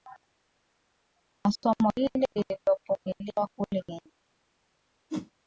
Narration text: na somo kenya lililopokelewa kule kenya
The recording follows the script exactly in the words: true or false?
false